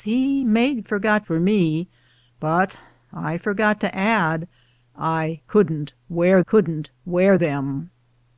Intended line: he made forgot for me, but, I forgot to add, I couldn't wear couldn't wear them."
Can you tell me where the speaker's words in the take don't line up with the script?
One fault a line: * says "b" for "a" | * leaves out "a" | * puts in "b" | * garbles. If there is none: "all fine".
all fine